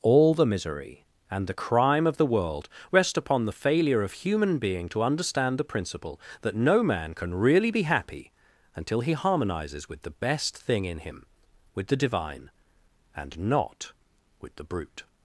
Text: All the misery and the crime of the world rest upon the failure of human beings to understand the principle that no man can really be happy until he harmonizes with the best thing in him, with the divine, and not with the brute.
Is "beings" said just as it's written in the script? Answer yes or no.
no